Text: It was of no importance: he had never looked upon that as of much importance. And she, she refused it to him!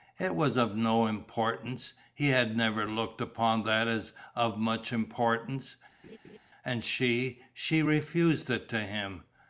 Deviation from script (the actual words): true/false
false